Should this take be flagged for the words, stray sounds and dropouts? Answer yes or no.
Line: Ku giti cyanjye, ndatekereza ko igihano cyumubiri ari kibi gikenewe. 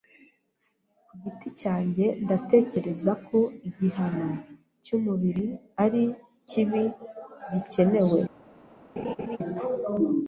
yes